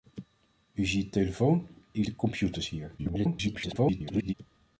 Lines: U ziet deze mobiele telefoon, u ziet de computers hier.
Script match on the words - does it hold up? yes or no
no